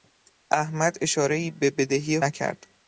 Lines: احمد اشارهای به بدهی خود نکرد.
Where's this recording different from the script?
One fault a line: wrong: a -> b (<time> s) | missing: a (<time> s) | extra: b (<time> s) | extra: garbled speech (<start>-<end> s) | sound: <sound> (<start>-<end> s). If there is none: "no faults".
missing: خود (2.2 s)